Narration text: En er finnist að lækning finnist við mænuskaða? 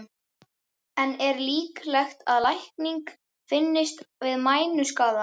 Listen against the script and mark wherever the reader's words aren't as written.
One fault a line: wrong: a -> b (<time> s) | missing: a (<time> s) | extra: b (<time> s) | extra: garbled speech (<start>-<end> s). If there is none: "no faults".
wrong: finnist -> líklegt (1.5 s)